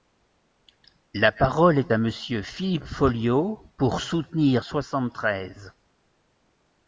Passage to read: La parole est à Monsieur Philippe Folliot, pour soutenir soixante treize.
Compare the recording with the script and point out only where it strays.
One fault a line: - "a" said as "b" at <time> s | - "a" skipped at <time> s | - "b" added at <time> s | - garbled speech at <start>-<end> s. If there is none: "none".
none